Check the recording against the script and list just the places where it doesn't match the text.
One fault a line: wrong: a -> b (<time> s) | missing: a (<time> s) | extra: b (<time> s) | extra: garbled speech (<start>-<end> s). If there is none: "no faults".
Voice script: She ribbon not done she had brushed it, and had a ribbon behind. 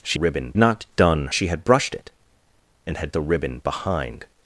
no faults